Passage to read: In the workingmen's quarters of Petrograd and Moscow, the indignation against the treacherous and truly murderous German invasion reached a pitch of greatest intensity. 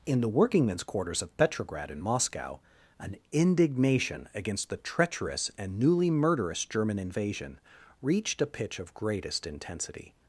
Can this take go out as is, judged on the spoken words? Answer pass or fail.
fail